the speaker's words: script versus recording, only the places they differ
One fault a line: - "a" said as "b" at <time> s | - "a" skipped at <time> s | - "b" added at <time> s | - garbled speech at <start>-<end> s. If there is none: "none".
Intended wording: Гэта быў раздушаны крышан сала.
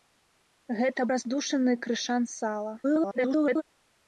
- "быў" skipped at 1.0 s
- garbled speech at 2.8-3.6 s